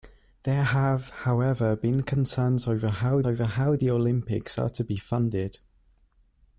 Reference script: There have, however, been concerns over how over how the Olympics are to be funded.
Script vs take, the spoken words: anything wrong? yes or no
no